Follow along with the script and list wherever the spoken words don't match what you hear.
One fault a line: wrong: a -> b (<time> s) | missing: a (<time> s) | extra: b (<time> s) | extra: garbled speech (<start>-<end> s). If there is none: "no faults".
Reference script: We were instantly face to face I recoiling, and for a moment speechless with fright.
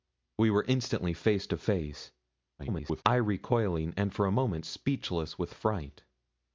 extra: garbled speech (2.6-3.0 s)